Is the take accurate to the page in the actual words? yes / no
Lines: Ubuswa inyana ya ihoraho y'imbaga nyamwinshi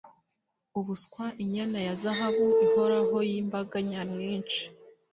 no